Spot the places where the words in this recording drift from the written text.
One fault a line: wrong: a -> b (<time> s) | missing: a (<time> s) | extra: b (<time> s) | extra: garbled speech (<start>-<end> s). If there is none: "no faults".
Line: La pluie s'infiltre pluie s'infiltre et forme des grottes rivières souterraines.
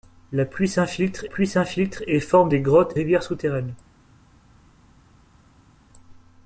no faults